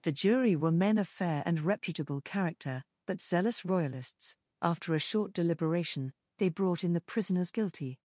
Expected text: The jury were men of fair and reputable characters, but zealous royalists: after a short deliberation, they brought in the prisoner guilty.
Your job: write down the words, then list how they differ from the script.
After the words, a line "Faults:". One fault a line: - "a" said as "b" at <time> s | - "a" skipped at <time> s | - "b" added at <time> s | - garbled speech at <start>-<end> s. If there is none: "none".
The jury were men of fair and reputable character, but zealous royalists: after a short deliberation, they brought in the prisoners guilty.
Faults:
- "characters" said as "character" at 2.2 s
- "prisoner" said as "prisoners" at 7.0 s